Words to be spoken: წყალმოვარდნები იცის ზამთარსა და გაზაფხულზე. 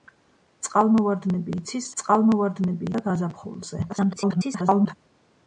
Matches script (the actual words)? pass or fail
fail